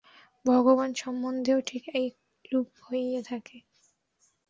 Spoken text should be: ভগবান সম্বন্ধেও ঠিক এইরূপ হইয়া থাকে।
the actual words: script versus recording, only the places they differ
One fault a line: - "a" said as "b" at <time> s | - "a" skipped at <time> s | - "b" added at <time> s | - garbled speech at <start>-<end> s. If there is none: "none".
none